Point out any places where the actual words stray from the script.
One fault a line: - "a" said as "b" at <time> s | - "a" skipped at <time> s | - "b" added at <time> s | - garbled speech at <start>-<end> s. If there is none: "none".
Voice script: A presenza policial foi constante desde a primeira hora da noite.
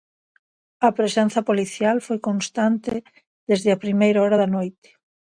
none